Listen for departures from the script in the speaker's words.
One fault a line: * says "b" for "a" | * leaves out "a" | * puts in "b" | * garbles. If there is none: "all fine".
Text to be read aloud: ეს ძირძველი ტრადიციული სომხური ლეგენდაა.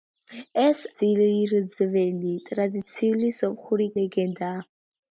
all fine